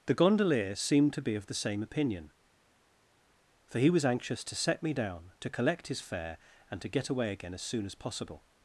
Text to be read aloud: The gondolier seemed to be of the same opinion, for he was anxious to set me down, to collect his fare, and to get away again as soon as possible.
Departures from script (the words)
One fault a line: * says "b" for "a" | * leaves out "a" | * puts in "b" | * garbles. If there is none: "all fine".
all fine